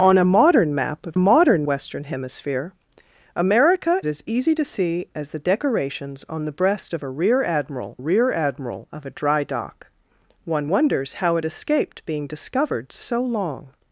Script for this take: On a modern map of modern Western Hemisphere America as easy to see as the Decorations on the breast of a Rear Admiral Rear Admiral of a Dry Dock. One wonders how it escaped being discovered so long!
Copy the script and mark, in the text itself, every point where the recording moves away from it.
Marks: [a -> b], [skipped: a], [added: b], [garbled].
On a modern map of modern Western Hemisphere America as easy to see as the Decorations on the breast of a Rear Admiral Rear Admiral of a Dry Dock. One wonders how it escaped being discovered so long!